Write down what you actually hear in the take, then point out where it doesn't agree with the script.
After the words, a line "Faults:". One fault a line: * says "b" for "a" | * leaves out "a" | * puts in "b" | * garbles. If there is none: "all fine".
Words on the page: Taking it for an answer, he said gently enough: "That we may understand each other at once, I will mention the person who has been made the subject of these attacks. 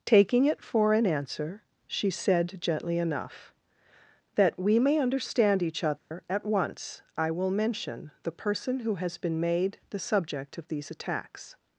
Taking it for an answer, she said gently enough: "That we may understand each other at once, I will mention the person who has been made the subject of these attacks.
Faults:
* says "she" for "he"